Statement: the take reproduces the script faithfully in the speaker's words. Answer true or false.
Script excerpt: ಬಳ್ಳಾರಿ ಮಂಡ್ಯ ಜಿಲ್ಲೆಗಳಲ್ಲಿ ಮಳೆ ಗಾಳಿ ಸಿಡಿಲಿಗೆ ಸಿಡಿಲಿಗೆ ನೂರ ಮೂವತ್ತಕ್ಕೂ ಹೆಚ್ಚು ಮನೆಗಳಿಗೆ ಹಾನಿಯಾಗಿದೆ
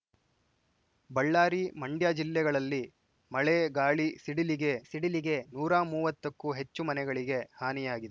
true